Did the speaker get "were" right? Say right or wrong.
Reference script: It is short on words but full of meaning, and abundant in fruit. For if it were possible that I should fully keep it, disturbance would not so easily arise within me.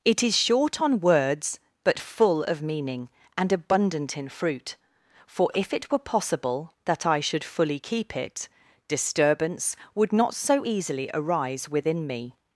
right